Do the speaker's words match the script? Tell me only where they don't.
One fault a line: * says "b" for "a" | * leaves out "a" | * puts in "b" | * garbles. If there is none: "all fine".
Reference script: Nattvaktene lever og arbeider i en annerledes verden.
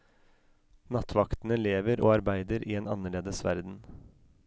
all fine